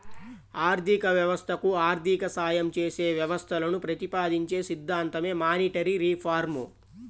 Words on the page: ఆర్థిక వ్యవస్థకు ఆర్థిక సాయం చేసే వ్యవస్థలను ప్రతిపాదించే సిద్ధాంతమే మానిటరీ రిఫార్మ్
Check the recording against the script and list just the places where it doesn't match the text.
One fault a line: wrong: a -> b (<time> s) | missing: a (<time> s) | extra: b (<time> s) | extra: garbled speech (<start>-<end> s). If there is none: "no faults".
no faults